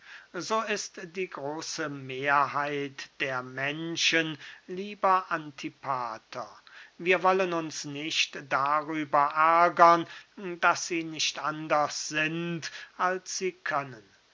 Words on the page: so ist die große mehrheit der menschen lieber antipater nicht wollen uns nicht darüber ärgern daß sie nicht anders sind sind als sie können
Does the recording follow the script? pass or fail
fail